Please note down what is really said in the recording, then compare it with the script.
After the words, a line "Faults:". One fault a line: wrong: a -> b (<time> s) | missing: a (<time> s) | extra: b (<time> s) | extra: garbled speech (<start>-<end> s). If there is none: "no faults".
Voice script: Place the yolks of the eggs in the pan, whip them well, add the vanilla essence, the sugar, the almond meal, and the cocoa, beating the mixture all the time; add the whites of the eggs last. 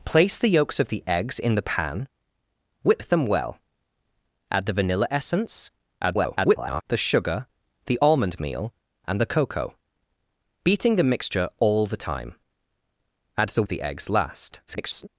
Place the yolks of the eggs in the pan, whip them well, add the vanilla essence, [garbled] the sugar, the almond meal, and the cocoa, beating the mixture all the time; add the of the eggs last. [garbled]
Faults:
extra: garbled speech (6.0-6.8 s)
missing: whites (13.6 s)
extra: garbled speech (14.7-15.1 s)